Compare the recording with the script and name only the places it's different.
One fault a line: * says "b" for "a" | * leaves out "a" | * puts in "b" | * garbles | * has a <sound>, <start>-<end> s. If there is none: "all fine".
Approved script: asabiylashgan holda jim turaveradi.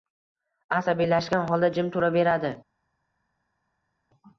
all fine